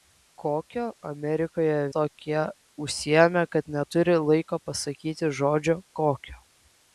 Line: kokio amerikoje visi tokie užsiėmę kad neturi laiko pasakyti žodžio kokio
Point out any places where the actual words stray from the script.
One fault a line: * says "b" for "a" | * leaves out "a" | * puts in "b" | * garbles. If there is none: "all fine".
* leaves out "visi"